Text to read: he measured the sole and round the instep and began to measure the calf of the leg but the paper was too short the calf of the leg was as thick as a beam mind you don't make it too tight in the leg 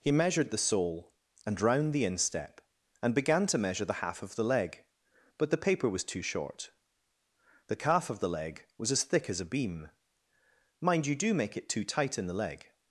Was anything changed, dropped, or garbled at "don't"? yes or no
yes